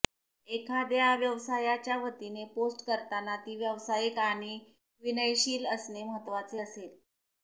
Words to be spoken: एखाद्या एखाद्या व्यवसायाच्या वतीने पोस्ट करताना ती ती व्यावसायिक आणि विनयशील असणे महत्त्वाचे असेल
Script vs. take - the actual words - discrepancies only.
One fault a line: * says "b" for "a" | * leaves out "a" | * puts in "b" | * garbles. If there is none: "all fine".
* leaves out "एखाद्या"
* leaves out "ती"